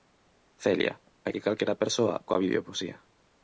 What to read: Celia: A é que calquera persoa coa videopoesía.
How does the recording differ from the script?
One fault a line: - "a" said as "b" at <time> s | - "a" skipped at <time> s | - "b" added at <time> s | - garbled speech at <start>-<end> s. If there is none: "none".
none